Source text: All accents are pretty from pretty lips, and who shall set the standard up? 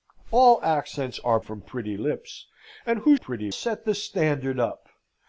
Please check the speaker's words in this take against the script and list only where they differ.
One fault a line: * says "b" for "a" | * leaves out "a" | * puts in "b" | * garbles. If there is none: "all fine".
* leaves out "pretty"
* says "pretty" for "shall"